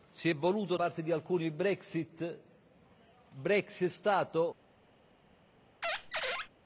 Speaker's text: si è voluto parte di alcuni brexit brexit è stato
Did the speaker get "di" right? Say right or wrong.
right